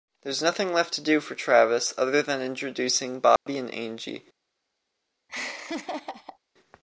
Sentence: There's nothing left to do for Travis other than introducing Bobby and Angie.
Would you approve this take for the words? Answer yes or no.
yes